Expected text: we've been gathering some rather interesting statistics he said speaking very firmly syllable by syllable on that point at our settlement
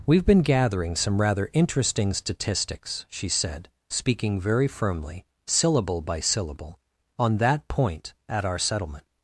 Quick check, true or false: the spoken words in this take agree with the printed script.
false